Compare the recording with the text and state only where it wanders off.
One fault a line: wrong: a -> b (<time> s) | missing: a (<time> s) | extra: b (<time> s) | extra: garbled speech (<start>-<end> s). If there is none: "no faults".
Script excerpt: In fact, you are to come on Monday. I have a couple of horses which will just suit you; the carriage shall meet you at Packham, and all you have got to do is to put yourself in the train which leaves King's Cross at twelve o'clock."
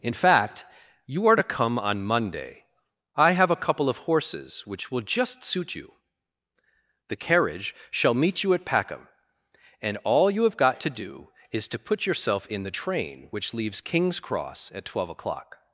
no faults